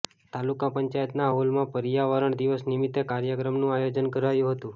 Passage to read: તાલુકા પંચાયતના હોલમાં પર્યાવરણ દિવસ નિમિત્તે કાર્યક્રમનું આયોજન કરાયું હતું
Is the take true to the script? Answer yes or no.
yes